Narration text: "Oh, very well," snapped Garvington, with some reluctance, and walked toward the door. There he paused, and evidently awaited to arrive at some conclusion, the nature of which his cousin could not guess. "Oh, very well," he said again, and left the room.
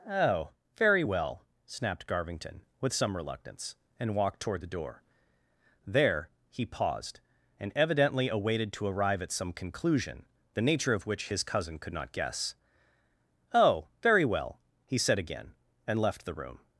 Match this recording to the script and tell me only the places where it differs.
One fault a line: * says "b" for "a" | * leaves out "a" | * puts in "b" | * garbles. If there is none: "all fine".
all fine